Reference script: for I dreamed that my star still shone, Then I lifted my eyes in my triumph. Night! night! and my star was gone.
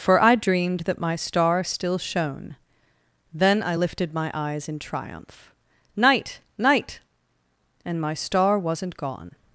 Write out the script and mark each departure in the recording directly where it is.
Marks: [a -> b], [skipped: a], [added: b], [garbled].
for I dreamed that my star still shone, Then I lifted my eyes in [skipped: my] triumph. Night! night! and my star [was -> wasn't] gone.